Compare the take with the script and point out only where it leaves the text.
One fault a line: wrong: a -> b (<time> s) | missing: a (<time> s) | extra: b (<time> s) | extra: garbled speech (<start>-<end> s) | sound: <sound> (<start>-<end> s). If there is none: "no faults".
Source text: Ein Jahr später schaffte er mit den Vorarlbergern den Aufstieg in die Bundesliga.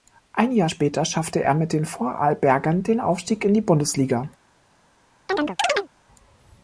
sound: chirp (5.3-5.9 s)